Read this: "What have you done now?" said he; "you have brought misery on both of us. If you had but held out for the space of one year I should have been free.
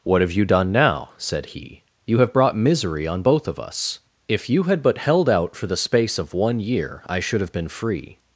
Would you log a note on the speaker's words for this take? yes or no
no